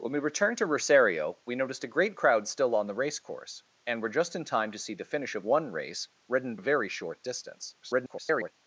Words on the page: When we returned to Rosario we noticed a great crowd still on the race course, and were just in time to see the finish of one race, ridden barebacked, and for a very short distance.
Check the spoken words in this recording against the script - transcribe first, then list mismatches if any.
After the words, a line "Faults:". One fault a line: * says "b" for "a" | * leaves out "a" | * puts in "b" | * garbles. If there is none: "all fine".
When we returned to Rosario we noticed a great crowd still on the race course, and were just in time to see the finish of one race, ridden a very short distance. [garbled]
Faults:
* leaves out "barebacked and for"
* garbles